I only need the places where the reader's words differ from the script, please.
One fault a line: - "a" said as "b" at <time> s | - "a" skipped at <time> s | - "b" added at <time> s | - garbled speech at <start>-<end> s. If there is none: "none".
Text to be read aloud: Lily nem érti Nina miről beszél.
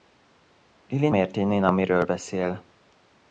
- "nem" skipped at 1.1 s